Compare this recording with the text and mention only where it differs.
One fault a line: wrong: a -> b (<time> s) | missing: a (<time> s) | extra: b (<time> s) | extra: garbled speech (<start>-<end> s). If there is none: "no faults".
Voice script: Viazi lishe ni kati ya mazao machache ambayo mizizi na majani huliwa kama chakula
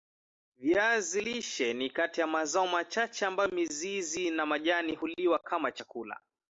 no faults